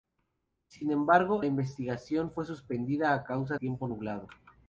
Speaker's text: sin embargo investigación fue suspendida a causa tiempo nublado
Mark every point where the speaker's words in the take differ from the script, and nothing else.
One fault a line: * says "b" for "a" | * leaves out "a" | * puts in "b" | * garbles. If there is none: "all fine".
all fine